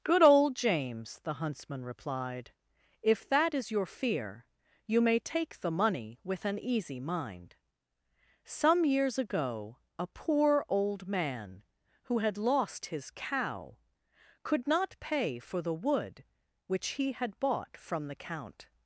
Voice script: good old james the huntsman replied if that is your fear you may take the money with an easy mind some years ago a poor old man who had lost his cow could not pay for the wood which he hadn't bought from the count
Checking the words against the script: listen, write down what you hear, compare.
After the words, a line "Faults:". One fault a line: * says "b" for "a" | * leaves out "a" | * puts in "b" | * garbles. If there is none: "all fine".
good old james the huntsman replied if that is your fear you may take the money with an easy mind some years ago a poor old man who had lost his cow could not pay for the wood which he had bought from the count
Faults:
* says "had" for "hadn't"